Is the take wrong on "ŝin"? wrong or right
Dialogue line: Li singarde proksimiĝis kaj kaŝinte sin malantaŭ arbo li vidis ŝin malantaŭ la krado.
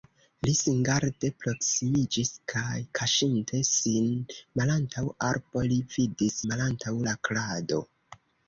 wrong